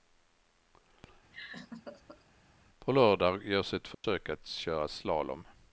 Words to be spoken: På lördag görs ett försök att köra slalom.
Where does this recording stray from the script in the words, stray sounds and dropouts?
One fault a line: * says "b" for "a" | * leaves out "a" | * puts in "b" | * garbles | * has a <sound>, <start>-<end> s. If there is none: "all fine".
* has a laugh, 1.3-2.3 s
* has a dropout, 3.9-4.0 s